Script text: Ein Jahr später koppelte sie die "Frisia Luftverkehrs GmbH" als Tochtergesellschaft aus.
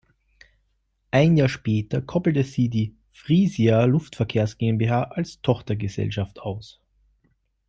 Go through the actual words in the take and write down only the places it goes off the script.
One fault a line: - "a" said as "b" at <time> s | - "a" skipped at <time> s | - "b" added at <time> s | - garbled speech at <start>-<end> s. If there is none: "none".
none